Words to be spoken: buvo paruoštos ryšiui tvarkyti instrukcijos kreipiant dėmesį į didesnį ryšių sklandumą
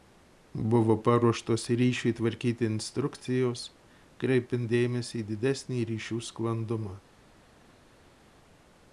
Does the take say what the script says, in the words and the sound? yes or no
yes